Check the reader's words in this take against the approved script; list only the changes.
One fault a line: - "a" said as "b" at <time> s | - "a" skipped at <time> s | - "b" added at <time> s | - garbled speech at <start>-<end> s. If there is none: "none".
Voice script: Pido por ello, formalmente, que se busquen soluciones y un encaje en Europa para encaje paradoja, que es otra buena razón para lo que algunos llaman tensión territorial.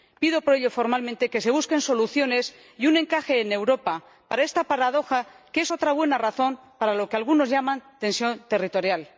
- "encaje" said as "esta" at 4.4 s